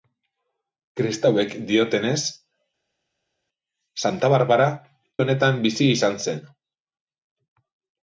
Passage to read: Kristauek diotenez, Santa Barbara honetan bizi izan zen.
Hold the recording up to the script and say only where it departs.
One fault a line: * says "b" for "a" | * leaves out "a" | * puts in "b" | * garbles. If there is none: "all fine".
all fine